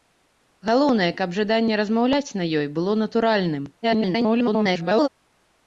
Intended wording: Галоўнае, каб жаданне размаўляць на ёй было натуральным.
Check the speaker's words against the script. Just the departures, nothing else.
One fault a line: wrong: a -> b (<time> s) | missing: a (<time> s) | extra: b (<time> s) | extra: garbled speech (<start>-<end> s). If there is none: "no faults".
extra: garbled speech (3.8-5.1 s)